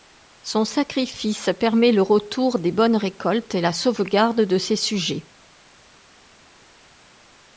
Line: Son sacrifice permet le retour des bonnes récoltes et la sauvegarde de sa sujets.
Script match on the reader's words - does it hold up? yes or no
no